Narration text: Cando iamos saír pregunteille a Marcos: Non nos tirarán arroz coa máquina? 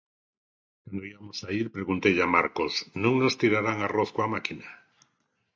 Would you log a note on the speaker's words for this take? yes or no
no